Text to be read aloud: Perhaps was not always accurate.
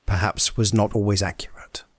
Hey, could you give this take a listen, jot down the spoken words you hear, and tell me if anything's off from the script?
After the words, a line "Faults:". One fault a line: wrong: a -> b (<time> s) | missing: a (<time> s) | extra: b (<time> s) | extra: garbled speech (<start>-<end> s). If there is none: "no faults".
Perhaps was not always accurate.
Faults:
no faults